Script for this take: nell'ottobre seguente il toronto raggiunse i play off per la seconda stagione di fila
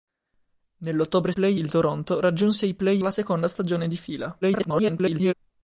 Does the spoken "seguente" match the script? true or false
false